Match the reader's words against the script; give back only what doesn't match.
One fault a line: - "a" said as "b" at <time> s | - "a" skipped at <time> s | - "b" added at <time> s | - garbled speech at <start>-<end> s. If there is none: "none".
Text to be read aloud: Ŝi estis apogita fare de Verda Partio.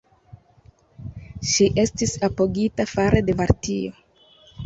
- "Verda" skipped at 3.4 s